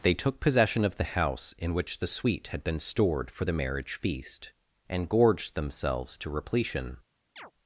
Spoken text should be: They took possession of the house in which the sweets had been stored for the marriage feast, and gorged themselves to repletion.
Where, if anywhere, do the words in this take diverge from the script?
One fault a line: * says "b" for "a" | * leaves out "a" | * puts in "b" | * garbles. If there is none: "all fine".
* says "sweet" for "sweets"